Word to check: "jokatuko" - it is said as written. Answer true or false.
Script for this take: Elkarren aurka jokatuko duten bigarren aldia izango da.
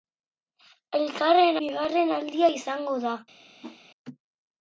false